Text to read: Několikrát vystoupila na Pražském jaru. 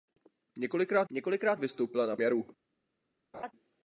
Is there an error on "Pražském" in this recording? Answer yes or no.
yes